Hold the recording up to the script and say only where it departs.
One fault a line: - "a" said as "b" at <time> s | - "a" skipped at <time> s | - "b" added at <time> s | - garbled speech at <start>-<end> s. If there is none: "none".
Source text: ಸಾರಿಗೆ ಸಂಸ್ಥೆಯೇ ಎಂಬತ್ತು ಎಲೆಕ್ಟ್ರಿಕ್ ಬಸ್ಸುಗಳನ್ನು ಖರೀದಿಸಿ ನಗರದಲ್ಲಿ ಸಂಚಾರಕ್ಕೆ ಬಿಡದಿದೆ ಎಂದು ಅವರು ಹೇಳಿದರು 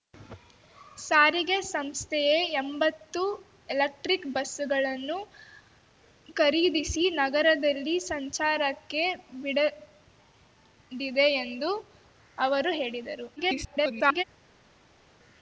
- garbled speech at 13.4-14.2 s